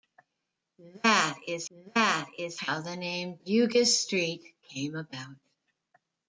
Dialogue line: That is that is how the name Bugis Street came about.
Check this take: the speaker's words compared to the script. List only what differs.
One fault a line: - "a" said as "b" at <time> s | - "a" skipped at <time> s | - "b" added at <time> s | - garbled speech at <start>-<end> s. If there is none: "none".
none